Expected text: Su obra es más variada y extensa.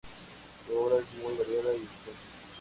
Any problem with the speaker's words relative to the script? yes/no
yes